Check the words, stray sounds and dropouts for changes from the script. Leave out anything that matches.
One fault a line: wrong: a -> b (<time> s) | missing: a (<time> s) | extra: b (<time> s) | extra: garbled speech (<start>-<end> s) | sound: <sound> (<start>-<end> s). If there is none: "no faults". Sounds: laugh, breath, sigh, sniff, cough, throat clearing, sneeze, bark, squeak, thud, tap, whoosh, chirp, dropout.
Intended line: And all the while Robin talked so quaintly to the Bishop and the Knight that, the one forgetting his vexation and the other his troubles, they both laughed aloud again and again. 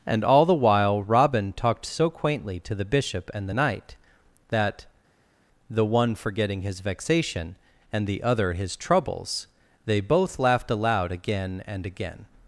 no faults